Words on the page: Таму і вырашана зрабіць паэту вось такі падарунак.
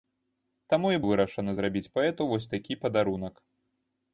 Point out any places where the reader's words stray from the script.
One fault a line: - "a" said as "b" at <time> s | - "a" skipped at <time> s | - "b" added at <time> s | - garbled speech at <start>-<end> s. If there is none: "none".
none